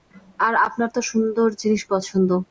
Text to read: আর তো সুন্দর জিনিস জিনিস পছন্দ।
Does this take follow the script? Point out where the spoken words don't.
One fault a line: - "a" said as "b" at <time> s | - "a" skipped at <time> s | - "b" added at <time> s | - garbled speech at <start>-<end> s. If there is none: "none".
- "আপনার" added at 0.7 s
- "জিনিস" skipped at 1.8 s